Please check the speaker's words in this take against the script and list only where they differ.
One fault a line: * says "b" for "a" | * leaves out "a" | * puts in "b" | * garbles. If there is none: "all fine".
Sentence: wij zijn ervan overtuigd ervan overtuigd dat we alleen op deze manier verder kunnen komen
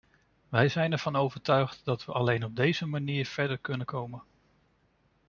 * leaves out "ervan overtuigd"